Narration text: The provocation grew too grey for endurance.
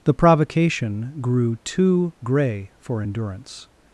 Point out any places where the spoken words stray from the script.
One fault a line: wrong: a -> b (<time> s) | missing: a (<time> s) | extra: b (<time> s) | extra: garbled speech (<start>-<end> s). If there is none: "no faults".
no faults